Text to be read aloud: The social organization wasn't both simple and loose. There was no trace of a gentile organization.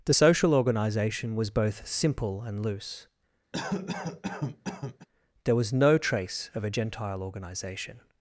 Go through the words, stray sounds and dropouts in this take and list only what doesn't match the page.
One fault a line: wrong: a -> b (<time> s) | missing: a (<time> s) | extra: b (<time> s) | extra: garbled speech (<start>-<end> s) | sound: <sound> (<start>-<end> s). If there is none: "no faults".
wrong: wasn't -> was (1.3 s)
sound: cough (3.5-5.1 s)